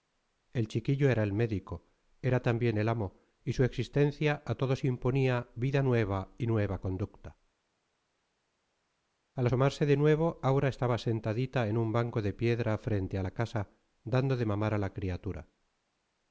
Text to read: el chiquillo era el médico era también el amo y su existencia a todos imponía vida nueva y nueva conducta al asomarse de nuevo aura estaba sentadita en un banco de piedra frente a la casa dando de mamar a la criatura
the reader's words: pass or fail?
pass